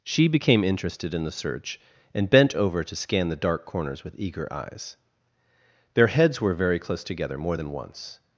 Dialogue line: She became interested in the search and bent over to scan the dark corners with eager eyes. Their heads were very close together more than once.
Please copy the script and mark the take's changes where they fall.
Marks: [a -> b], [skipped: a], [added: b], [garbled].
She became interested in the search and bent over to scan the dark corners with eager eyes. Their heads were very close together more than once.